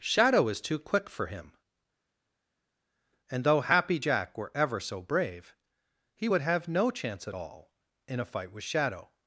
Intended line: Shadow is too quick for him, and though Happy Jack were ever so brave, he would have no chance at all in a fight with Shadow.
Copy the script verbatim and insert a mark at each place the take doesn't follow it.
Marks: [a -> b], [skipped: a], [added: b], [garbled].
Shadow is too quick for him, and though Happy Jack were ever so brave, he would have no chance at all in a fight with Shadow.